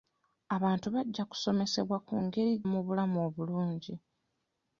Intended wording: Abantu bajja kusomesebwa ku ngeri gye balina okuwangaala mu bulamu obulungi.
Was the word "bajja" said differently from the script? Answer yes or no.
no